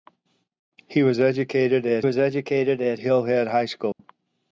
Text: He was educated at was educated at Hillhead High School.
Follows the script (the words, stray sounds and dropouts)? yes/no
no